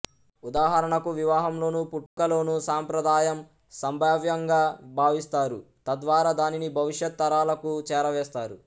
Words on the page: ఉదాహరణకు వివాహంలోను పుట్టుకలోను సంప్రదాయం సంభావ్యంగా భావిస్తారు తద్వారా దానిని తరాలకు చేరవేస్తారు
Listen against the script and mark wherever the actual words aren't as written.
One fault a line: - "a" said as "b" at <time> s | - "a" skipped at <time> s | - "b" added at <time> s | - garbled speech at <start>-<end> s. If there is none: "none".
- "భవిష్యత్" added at 6.8 s